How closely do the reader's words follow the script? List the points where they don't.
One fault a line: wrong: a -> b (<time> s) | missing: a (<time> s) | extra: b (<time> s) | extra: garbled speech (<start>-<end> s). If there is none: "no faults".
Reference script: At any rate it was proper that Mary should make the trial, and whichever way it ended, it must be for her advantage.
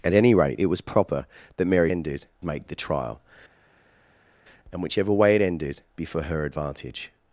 wrong: should -> ended (1.9 s)
missing: it must (5.8 s)